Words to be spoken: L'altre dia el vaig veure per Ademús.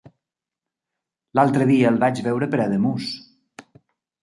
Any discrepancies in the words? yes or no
no